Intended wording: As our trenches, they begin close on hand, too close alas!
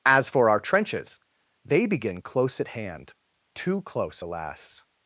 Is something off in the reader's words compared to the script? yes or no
yes